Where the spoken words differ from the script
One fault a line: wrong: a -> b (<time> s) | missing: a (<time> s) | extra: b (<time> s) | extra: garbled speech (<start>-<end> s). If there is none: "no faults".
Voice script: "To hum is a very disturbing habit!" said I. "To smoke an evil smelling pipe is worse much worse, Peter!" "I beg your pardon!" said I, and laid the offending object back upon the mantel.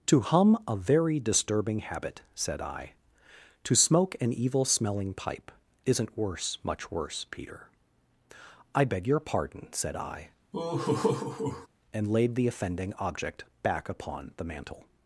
missing: is (0.6 s)
wrong: is -> isn't (5.8 s)